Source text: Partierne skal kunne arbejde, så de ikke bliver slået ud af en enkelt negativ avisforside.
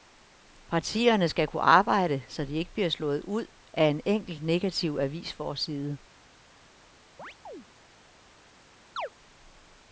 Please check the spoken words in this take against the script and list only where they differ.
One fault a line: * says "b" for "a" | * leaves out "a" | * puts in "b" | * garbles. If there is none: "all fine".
all fine